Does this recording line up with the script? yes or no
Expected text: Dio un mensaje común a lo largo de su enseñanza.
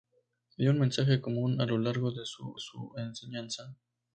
no